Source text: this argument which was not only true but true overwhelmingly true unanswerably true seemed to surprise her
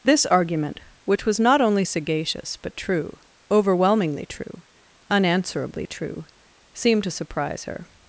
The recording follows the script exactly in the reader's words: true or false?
false